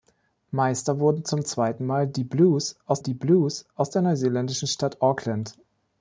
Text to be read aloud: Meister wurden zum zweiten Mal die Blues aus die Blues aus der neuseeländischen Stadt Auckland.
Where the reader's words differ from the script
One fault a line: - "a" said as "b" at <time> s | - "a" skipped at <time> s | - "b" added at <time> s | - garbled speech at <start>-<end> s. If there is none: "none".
none